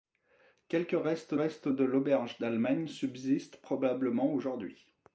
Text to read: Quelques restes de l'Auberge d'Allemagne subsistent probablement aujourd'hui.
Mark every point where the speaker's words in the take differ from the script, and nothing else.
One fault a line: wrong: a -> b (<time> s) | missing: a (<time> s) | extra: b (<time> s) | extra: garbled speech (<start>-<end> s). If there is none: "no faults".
extra: restes (1.3 s)